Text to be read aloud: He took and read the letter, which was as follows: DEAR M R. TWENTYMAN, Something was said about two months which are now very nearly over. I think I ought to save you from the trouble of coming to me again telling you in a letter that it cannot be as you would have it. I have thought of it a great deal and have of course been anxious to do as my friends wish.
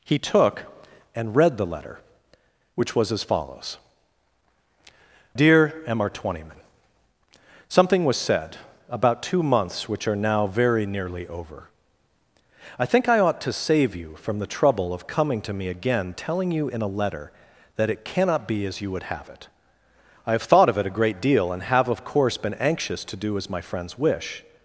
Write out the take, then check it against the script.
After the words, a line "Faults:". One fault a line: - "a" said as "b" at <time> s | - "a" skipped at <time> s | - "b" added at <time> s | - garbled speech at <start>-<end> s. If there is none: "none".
He took and read the letter, which was as follows: DEAR M R. TWENTYMAN, Something was said about two months which are now very nearly over. I think I ought to save you from the trouble of coming to me again telling you in a letter that it cannot be as you would have it. I have thought of it a great deal and have of course been anxious to do as my friends wish.
Faults:
none